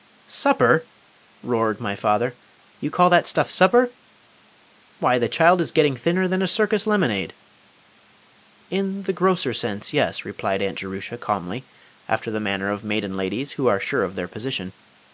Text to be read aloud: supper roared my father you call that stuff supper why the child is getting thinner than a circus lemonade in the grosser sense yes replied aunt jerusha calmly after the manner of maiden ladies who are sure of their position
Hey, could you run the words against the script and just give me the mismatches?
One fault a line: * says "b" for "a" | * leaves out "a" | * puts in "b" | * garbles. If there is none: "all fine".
all fine